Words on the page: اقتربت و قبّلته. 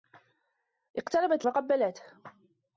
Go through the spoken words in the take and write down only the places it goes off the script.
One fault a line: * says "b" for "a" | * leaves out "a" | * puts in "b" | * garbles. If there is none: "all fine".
all fine